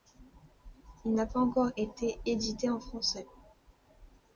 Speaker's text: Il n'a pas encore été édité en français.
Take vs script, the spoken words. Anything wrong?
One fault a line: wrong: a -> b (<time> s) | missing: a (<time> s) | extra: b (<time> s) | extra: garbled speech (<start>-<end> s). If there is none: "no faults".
no faults